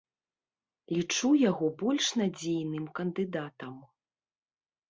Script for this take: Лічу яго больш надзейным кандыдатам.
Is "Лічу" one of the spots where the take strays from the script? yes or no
no